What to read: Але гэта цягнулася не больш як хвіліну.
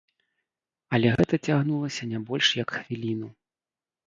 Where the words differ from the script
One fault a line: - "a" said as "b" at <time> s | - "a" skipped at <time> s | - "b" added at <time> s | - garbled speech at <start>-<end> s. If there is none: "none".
none